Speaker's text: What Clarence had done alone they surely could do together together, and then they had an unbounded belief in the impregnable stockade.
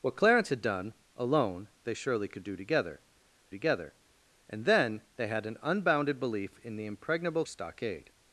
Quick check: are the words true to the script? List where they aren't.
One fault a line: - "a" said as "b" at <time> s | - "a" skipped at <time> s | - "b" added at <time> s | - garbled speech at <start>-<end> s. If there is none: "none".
none